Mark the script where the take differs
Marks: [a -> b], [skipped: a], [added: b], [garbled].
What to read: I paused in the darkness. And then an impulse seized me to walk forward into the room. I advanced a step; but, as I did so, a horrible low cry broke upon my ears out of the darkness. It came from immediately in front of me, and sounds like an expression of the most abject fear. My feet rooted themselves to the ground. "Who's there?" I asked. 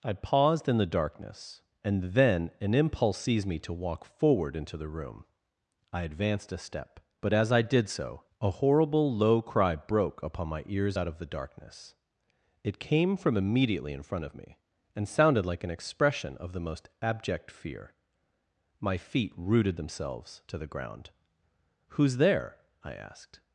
I paused in the darkness. And then an impulse seized me to walk forward into the room. I advanced a step; but, as I did so, a horrible low cry broke upon my ears out of the darkness. It came from immediately in front of me, and [sounds -> sounded] like an expression of the most abject fear. My feet rooted themselves to the ground. "Who's there?" I asked.